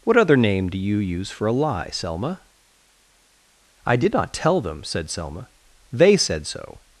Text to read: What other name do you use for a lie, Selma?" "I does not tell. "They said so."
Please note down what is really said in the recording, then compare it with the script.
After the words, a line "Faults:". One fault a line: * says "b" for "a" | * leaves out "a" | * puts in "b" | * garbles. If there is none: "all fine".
What other name do you use for a lie, Selma?" "I did not tell them," said Selma. "They said so."
Faults:
* says "did" for "does"
* puts in "them said Selma"